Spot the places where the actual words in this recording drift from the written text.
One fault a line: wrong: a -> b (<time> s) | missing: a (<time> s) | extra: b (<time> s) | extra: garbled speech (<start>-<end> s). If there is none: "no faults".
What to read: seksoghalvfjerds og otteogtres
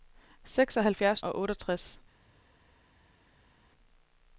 no faults